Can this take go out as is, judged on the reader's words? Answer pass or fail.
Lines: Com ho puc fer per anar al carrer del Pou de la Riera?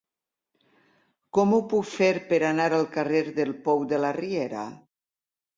pass